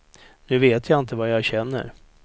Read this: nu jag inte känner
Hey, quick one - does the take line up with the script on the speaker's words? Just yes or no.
no